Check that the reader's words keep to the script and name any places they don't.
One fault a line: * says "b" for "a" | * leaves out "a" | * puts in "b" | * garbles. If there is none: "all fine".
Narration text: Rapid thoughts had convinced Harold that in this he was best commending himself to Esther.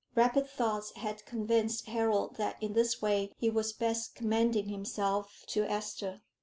* puts in "way"